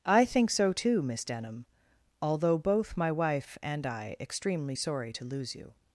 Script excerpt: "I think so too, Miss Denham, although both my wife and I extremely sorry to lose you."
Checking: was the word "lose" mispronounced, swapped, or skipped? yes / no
no